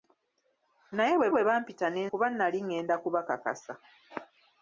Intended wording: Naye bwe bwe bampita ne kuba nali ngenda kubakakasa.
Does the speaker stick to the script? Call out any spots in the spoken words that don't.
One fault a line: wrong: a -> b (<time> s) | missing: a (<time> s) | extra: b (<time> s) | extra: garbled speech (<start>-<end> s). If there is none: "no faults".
no faults